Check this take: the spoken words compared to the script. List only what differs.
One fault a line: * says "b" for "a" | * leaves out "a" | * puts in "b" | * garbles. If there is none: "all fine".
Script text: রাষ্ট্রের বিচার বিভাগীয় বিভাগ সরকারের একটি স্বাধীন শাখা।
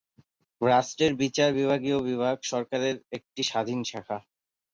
all fine